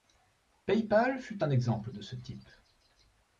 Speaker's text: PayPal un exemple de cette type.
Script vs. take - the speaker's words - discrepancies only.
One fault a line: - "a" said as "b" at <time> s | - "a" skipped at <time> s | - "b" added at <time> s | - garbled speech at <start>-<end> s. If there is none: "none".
- "fut" added at 1.2 s
- "cette" said as "ce" at 2.0 s